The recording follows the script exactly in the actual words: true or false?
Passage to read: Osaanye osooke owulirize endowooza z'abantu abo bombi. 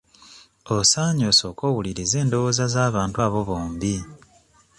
true